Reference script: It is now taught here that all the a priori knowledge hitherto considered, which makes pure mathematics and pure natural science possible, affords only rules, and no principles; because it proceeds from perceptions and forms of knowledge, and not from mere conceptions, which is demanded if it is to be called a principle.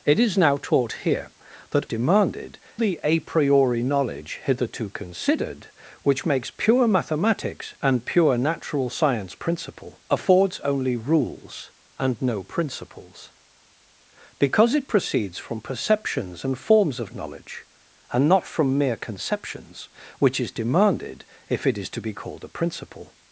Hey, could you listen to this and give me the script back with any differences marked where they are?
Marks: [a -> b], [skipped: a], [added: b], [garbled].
It is now taught here that [all -> demanded] the a priori knowledge hitherto considered, which makes pure mathematics and pure natural science [possible, -> principle] affords only rules, and no principles; because it proceeds from perceptions and forms of knowledge, and not from mere conceptions, which is demanded if it is to be called a principle.